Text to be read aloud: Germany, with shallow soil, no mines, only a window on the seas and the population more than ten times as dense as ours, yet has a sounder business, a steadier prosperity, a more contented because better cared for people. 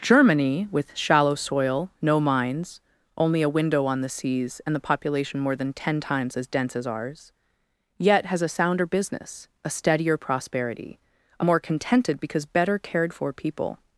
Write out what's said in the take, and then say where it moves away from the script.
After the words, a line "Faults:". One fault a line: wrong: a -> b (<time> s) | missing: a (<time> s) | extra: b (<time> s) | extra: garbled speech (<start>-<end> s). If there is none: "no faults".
Germany, with shallow soil, no mines, only a window on the seas and the population more than ten times as dense as ours, yet has a sounder business, a steadier prosperity, a more contented because better cared for people.
Faults:
no faults